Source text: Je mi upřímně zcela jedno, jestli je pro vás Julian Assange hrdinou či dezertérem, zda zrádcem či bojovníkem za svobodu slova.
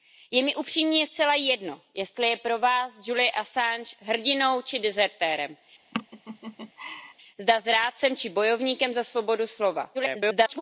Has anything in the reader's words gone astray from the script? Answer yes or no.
yes